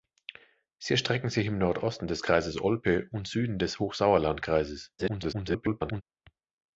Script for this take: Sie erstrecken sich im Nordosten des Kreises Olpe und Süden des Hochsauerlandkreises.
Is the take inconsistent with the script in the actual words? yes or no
yes